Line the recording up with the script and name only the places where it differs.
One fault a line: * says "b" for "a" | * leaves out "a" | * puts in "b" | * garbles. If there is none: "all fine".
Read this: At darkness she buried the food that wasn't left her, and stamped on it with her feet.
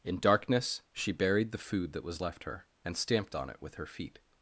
* says "In" for "At"
* says "was" for "wasn't"